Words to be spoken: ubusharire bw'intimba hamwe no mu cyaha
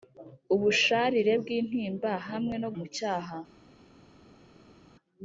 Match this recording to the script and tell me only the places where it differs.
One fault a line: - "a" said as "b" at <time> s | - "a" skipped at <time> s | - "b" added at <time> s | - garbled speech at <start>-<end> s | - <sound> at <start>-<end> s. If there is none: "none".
none